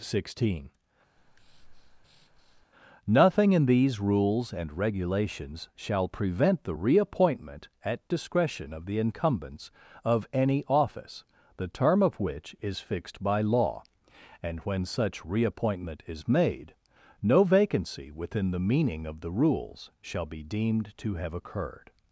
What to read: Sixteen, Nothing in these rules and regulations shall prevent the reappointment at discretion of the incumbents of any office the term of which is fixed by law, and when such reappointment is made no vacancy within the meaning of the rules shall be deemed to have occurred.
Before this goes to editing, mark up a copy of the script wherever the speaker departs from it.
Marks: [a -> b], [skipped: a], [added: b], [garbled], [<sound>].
Sixteen, [breath] Nothing in these rules and regulations shall prevent the reappointment at discretion of the incumbents of any office the term of which is fixed by law, and when such reappointment is made no vacancy within the meaning of the rules shall be deemed to have occurred.